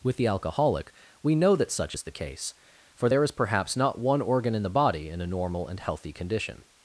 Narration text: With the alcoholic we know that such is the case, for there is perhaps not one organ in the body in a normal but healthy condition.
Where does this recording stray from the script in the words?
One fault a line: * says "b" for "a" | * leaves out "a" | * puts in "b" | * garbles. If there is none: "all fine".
* says "and" for "but"